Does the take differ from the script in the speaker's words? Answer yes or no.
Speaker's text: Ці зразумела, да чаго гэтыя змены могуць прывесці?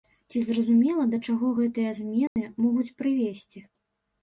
no